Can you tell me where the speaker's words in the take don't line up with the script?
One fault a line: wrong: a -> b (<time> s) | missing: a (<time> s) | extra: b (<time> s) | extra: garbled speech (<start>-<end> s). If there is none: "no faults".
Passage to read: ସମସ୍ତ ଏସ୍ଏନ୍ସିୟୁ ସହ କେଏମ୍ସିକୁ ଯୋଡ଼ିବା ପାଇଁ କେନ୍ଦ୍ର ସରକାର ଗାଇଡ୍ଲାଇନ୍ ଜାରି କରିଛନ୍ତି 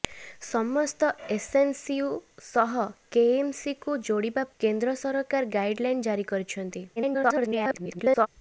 missing: ପାଇଁ (4.5 s)
extra: garbled speech (7.0-8.3 s)